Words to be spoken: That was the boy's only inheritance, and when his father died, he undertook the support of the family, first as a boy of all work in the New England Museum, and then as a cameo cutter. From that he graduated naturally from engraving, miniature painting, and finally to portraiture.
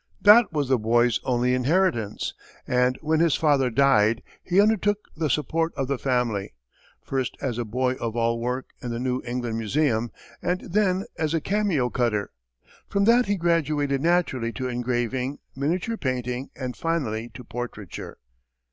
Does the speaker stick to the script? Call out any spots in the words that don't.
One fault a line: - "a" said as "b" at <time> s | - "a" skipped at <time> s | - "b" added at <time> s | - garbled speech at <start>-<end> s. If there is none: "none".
- "from" said as "to" at 14.5 s